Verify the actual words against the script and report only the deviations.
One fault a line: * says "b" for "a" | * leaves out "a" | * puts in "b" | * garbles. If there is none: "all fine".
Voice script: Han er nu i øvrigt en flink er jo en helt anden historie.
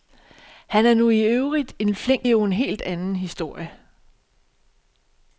all fine